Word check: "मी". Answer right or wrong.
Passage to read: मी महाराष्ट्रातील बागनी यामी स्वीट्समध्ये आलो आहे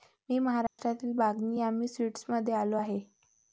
right